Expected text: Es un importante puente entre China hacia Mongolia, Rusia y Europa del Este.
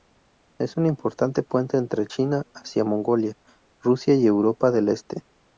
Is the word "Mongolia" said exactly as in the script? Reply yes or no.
yes